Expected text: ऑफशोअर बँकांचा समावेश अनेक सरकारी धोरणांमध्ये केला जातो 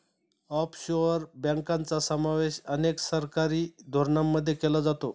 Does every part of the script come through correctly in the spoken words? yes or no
yes